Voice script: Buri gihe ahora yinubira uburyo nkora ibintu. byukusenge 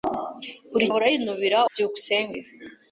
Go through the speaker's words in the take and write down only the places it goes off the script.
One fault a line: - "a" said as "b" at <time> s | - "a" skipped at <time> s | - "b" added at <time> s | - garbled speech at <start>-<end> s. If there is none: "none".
- "gihe" skipped at 0.8 s
- "uburyo nkora ibintu" skipped at 1.6 s